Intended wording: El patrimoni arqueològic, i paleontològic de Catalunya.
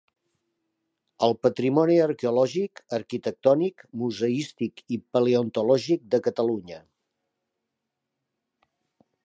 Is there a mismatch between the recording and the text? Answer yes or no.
yes